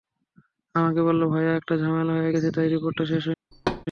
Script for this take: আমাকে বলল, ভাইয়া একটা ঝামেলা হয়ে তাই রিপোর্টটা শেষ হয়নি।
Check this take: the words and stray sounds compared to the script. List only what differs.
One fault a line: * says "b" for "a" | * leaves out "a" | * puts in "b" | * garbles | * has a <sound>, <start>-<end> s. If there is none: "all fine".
* puts in "গেছে"
* has a thud, 3.5-3.9 s